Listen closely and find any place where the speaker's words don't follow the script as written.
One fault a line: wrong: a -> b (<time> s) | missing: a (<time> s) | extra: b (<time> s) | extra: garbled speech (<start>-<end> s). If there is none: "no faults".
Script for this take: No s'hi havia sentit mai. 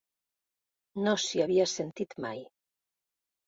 no faults